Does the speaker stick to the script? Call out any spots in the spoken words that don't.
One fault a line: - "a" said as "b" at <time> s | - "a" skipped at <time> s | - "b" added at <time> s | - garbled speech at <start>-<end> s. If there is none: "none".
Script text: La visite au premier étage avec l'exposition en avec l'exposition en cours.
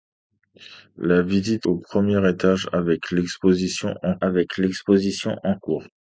none